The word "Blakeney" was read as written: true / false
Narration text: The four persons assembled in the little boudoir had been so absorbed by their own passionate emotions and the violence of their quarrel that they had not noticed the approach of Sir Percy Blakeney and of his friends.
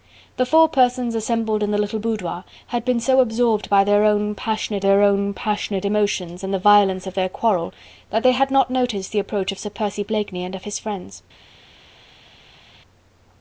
true